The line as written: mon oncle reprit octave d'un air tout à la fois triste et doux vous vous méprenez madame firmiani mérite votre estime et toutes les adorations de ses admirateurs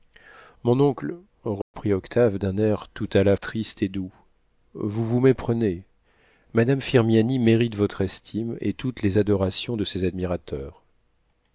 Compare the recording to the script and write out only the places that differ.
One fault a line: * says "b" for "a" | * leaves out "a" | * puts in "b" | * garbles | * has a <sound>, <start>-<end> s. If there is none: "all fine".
* has a dropout, 1.6-1.7 s
* leaves out "fois"